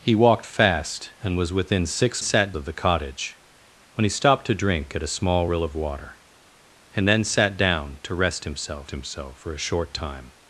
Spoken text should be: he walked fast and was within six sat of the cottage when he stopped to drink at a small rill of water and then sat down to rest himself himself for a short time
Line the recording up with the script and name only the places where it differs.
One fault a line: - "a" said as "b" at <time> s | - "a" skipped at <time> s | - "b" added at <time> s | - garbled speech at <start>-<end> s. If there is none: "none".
none